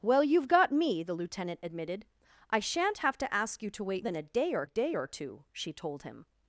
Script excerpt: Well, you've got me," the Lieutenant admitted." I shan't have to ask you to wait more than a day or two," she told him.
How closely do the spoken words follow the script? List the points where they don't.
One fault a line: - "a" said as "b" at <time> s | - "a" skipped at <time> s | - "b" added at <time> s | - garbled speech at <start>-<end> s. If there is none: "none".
- "more" skipped at 4.0 s
- "day or" added at 4.6 s